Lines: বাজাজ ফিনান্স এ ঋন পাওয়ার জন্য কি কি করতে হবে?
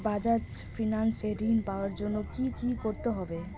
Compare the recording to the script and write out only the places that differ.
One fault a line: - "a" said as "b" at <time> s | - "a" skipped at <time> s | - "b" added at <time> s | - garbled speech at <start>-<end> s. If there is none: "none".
none